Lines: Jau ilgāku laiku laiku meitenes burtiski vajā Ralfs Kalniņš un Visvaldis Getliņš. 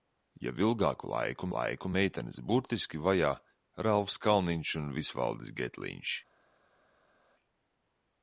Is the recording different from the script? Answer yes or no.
no